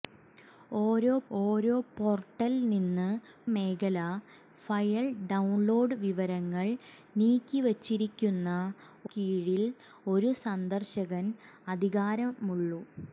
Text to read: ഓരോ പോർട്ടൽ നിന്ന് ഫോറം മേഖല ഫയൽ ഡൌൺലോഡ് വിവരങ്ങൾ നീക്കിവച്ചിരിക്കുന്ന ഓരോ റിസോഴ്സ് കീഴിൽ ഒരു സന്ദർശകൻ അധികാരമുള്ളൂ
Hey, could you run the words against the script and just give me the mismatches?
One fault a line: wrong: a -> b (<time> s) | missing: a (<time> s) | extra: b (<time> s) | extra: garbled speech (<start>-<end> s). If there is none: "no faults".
extra: ഓരോ (1.4 s)
missing: ഫോറം (3.1 s)
missing: ഓരോ റിസോഴ്സ് (8.5 s)